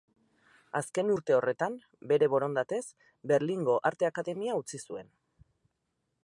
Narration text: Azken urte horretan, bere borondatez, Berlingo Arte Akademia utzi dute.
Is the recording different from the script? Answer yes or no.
yes